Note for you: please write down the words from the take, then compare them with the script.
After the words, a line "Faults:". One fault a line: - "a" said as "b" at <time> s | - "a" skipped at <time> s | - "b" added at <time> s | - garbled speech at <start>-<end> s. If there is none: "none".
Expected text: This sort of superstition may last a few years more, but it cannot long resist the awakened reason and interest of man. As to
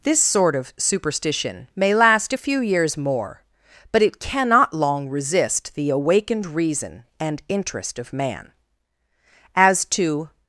This sort of superstition may last a few years more, but it cannot long resist the awakened reason and interest of man. As to
Faults:
none